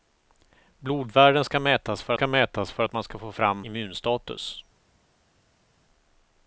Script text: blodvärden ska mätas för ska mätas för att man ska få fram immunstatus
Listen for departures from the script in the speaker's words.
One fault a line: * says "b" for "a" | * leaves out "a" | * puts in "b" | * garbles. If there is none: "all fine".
all fine